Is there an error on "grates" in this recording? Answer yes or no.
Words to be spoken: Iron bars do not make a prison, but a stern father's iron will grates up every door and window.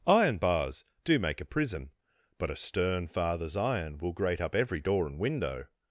yes